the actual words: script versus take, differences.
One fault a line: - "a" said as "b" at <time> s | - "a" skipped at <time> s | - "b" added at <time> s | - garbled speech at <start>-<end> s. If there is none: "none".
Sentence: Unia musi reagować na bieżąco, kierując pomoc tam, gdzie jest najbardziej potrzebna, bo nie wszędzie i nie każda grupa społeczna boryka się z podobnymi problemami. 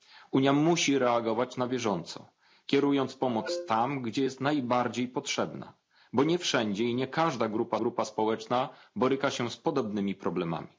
- "grupa" added at 7.7 s